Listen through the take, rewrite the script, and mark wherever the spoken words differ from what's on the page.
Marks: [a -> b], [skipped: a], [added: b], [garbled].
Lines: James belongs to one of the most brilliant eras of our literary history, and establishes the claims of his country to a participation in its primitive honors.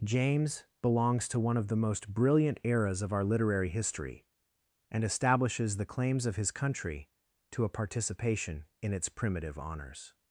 James belongs to one of the most brilliant eras of our literary history, and establishes the claims of his country to a participation in its primitive honors.